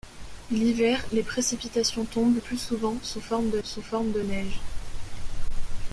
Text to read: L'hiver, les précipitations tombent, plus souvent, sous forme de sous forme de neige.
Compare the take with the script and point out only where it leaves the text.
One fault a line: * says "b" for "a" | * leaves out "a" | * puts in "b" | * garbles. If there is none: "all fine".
all fine